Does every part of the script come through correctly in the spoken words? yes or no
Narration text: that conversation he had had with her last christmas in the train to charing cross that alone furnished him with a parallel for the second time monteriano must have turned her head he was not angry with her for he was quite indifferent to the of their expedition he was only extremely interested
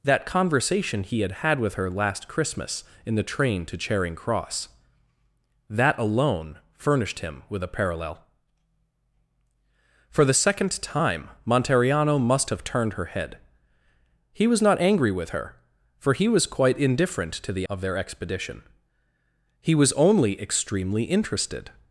yes